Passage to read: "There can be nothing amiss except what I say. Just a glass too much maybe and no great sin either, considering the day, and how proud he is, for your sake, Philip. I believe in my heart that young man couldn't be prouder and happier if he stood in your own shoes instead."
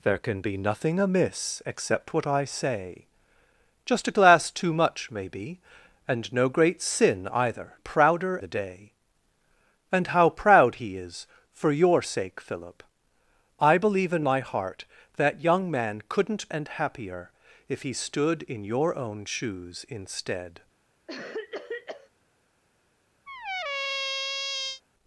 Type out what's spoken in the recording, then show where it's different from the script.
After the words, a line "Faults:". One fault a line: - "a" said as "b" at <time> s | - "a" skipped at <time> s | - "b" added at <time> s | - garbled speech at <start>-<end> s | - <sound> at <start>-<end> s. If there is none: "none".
"There can be nothing amiss except what I say. Just a glass too much maybe and no great sin either, prouder the day, and how proud he is, for your sake, Philip. I believe in my heart that young man couldn't and happier if he stood in your own shoes instead."
Faults:
- "considering" said as "prouder" at 7.8 s
- "be prouder" skipped at 16.5 s
- cough at 21.1-22.1 s
- squeak at 23.3-24.8 s